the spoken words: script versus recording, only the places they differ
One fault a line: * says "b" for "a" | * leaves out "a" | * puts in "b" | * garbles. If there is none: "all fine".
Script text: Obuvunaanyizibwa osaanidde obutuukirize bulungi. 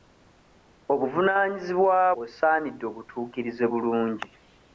all fine